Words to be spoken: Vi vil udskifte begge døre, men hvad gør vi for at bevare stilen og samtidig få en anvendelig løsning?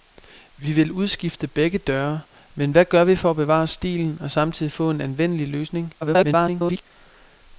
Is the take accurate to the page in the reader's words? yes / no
no